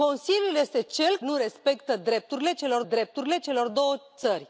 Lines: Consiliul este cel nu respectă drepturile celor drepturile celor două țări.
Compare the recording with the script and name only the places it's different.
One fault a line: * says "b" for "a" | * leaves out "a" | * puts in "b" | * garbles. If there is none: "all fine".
all fine